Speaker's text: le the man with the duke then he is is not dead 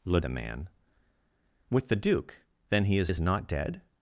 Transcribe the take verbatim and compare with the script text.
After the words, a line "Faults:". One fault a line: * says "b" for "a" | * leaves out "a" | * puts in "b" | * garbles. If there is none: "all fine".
le the man with the duke then he is is not dead
Faults:
all fine